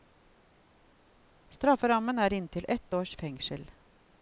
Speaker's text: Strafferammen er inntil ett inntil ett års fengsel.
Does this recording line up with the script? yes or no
no